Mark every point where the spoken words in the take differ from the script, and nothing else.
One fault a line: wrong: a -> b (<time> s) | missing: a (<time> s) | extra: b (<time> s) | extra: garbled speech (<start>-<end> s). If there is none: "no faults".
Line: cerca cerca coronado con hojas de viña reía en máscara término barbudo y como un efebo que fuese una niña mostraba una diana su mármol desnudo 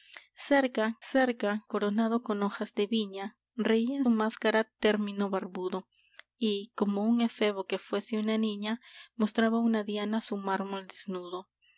no faults